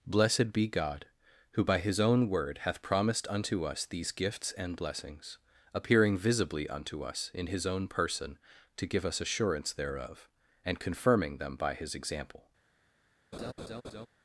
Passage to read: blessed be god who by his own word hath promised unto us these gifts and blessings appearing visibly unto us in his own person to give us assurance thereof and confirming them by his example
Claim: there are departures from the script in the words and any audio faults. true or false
true